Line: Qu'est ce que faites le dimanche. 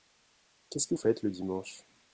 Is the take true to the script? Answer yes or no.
yes